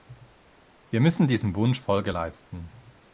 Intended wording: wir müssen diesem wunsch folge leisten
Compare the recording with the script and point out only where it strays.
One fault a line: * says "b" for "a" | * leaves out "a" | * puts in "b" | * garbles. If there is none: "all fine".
all fine